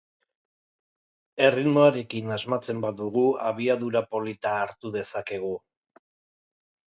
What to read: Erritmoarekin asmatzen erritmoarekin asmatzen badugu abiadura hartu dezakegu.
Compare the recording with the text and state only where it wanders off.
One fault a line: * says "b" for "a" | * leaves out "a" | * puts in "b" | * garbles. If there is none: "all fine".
* leaves out "erritmoarekin asmatzen"
* puts in "polita"